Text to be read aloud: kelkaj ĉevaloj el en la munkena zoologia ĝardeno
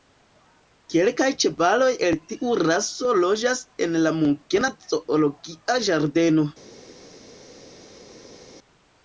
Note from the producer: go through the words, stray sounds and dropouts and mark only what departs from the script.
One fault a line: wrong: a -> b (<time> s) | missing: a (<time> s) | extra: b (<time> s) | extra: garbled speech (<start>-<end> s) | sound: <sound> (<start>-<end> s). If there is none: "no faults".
extra: tiu raso loĝas (2.3 s)